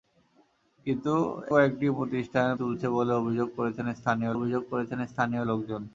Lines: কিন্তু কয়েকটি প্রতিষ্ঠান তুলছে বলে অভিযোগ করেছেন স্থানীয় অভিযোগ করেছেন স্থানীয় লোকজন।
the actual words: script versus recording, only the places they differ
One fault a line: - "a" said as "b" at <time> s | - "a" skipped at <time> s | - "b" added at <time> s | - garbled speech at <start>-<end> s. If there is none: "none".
none